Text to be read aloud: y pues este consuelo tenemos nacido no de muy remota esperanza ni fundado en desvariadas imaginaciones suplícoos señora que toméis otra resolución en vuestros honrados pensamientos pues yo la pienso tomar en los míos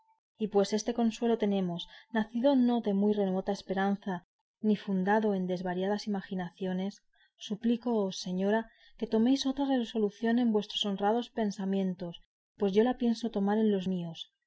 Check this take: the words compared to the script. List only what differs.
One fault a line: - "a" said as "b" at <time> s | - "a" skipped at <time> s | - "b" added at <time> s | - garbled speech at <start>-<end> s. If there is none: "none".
none